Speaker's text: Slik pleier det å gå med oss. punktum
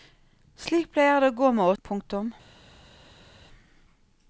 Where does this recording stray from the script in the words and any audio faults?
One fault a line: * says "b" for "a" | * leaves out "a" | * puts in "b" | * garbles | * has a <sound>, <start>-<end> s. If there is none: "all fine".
* leaves out "oss"